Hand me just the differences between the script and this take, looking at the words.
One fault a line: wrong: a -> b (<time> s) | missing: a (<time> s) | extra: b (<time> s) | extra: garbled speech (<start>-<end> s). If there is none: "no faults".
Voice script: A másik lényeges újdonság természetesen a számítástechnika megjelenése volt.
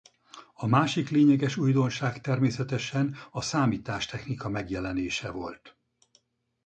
no faults